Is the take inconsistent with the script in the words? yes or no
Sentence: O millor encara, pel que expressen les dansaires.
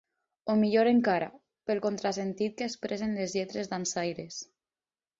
yes